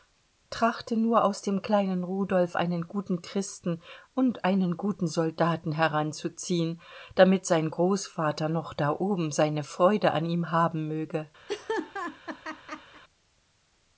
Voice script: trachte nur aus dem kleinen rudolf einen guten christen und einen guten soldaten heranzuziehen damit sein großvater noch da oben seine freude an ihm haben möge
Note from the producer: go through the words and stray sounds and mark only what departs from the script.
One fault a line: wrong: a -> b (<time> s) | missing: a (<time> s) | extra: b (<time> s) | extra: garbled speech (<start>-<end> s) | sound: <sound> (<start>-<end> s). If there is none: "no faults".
sound: laugh (11.5-13.0 s)